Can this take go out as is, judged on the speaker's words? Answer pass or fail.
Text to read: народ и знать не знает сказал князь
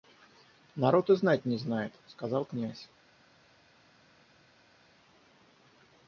pass